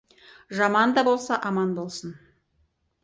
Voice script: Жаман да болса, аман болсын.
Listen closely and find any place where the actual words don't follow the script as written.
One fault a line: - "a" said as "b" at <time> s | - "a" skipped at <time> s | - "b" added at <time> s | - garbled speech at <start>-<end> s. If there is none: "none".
none